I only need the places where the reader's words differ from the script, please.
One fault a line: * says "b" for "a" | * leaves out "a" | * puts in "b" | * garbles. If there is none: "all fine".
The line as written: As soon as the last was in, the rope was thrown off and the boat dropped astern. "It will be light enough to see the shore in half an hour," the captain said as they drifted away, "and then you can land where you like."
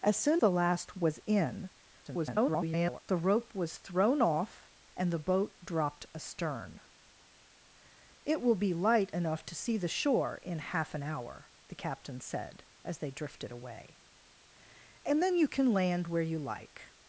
* leaves out "as"
* garbles